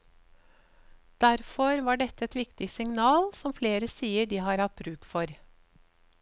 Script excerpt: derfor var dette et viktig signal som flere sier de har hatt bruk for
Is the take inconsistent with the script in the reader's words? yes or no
no